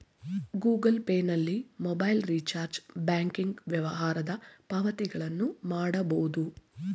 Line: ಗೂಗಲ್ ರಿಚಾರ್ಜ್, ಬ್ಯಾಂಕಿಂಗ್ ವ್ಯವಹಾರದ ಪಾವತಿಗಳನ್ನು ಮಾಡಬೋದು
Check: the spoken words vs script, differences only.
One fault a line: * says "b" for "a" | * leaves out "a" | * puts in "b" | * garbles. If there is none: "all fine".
* puts in "ಪೇ ನಲ್ಲಿ ಮೊಬೈಲ್"